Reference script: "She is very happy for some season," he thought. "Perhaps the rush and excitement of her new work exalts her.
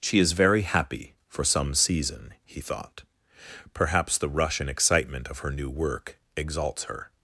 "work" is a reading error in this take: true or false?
false